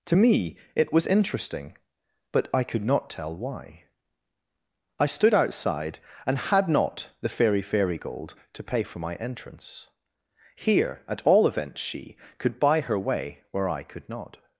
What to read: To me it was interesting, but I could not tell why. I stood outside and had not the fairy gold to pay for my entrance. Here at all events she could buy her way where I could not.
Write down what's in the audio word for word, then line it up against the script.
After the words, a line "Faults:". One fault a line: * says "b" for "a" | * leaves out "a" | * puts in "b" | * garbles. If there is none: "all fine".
To me it was interesting, but I could not tell why. I stood outside and had not the fairy fairy gold to pay for my entrance. Here at all events she could buy her way where I could not.
Faults:
* puts in "fairy"